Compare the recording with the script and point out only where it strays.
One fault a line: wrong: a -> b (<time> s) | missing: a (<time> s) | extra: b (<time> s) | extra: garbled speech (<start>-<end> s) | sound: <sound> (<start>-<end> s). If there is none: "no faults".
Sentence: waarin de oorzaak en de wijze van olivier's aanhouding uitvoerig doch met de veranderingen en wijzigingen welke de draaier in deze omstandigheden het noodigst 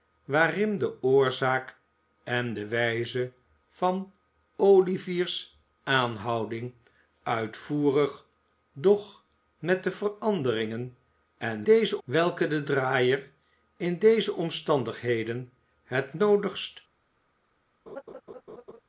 wrong: wijzigingen -> deze (11.6 s)
sound: laugh (17.9-18.8 s)